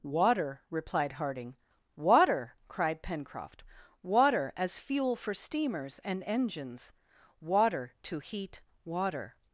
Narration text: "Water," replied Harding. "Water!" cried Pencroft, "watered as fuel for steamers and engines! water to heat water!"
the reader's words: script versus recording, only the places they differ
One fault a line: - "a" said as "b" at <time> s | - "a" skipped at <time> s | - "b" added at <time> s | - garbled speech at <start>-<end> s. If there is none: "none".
- "watered" said as "water" at 4.0 s